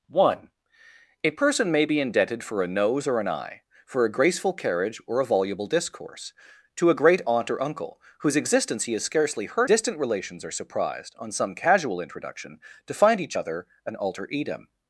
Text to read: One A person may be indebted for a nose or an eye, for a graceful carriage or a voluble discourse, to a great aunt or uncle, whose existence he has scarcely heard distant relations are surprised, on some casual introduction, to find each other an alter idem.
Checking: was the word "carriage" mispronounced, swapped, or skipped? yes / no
no